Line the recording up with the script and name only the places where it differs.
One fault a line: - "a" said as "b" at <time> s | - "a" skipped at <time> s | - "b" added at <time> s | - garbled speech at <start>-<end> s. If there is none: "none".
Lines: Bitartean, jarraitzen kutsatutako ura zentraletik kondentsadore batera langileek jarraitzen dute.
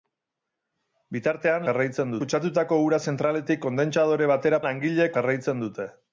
none